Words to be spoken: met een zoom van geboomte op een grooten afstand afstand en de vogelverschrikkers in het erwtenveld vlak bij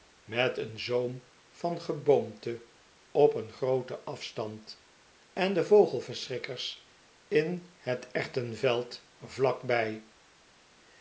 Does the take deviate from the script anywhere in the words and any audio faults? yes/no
yes